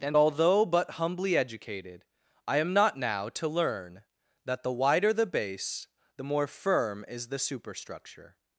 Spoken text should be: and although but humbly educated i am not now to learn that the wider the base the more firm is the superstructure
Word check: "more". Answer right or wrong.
right